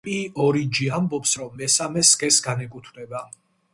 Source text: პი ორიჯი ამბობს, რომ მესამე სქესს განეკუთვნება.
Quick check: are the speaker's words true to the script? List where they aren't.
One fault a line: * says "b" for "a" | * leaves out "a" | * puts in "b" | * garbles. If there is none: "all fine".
all fine